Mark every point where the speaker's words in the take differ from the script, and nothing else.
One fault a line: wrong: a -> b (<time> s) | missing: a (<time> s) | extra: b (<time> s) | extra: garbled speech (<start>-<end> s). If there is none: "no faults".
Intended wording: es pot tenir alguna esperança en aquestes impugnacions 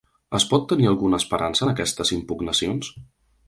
no faults